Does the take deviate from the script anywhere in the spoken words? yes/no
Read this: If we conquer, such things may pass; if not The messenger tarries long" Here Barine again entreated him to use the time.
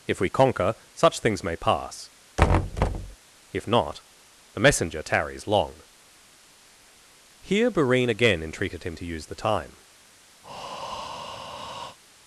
no